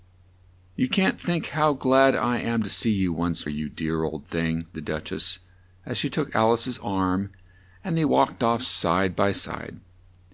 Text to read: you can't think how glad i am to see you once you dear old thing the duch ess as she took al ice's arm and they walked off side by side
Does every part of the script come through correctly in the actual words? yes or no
yes